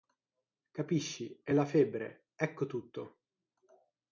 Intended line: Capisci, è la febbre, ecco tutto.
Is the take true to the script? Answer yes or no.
yes